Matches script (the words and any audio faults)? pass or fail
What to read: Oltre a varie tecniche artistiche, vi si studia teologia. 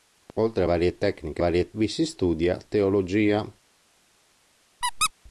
fail